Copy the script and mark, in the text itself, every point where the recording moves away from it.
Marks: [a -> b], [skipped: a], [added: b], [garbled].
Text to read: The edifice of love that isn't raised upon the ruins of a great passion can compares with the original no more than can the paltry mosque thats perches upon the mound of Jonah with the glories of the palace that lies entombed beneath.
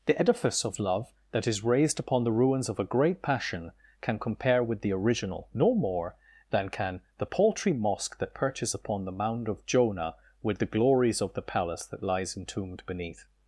The edifice of love that [isn't -> is] raised upon the ruins of a great passion can [compares -> compare] with the original no more than can the paltry mosque [thats -> that] perches upon the mound of Jonah with the glories of the palace that lies entombed beneath.